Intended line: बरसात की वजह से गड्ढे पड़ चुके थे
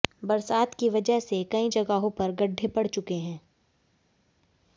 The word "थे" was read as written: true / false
false